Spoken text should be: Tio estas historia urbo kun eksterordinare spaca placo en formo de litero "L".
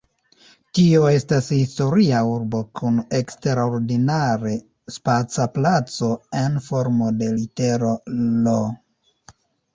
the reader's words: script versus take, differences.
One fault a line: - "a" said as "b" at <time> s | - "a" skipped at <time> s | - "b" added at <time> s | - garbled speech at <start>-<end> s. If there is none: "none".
none